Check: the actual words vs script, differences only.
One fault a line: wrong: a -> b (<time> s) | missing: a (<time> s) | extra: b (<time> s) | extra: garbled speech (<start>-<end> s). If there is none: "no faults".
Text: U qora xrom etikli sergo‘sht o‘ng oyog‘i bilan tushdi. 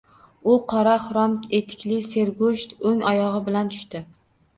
no faults